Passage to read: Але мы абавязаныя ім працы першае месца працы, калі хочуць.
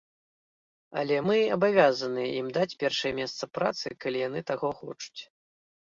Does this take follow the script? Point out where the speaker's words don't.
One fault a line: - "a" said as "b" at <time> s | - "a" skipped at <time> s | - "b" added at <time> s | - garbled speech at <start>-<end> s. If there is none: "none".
- "працы" said as "даць" at 2.6 s
- "яны таго" added at 4.3 s